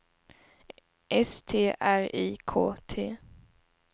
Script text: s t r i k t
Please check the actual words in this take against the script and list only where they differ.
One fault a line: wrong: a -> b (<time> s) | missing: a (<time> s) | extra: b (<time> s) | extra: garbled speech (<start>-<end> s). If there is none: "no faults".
no faults